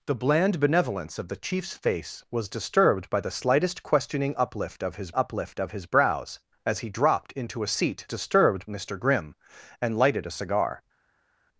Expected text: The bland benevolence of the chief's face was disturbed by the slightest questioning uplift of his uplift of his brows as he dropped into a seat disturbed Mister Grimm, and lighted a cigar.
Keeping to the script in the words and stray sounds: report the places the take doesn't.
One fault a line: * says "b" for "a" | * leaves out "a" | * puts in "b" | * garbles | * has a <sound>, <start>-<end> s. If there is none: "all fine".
all fine